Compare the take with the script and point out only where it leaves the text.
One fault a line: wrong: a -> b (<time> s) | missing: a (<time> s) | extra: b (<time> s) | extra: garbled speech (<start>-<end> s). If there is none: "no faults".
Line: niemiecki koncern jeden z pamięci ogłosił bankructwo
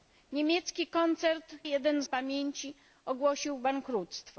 no faults